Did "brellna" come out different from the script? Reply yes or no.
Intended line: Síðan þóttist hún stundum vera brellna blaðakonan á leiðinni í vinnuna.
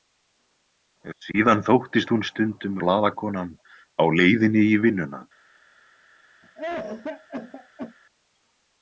yes